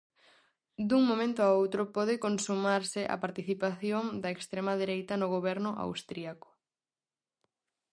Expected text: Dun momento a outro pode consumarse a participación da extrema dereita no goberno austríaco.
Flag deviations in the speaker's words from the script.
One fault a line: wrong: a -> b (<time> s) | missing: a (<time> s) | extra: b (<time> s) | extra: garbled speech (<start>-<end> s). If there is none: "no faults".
no faults